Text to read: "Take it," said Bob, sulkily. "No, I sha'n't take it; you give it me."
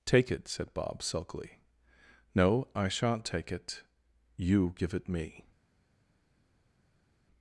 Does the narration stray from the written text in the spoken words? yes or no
no